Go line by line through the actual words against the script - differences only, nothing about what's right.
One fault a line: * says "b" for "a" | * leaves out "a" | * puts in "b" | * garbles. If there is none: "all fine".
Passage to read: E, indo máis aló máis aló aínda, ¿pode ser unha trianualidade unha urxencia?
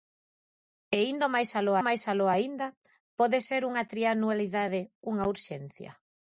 all fine